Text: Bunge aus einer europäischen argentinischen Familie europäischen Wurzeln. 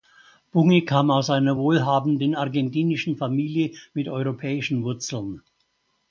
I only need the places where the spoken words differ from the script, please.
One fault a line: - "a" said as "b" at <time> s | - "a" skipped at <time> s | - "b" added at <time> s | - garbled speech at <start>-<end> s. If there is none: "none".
- "kam" added at 0.8 s
- "europäischen" said as "wohlhabenden" at 1.6 s
- "mit" added at 3.9 s